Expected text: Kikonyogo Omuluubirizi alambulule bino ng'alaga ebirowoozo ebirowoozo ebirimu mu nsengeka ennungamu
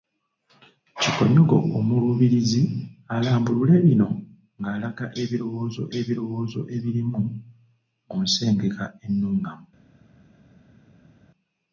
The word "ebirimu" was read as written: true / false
true